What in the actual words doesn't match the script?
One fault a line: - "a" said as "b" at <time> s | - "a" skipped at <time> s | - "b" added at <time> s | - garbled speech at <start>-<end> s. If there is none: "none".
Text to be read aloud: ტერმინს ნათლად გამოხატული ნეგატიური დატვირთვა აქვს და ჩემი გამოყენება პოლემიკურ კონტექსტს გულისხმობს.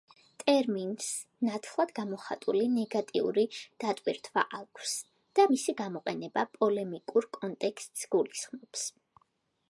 - "ჩემი" said as "მისი" at 5.6 s